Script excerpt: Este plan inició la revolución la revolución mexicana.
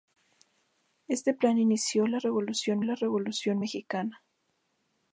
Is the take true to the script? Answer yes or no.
yes